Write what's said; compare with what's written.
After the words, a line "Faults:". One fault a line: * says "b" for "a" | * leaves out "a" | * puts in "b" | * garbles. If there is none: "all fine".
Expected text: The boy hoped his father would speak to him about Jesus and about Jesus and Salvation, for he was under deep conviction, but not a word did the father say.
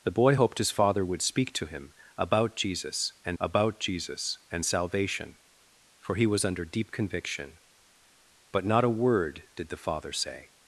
The boy hoped his father would speak to him about Jesus and about Jesus and Salvation, for he was under deep conviction, but not a word did the father say.
Faults:
all fine